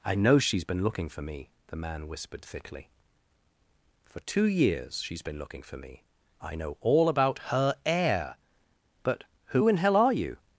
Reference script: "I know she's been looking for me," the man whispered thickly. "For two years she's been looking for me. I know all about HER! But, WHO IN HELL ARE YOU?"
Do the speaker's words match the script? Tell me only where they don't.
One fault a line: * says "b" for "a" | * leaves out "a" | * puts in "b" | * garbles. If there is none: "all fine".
* puts in "heir"